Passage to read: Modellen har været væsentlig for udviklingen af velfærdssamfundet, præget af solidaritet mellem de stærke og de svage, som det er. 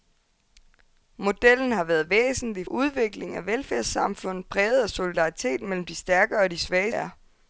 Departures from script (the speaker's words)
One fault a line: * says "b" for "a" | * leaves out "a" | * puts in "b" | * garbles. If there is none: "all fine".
* leaves out "for"
* leaves out "som det"